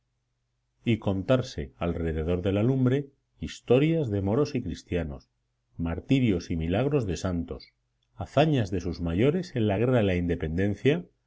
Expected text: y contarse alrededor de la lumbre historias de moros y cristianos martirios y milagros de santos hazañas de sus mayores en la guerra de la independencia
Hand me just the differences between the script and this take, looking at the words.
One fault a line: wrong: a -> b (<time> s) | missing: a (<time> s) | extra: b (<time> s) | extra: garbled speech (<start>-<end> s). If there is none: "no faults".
no faults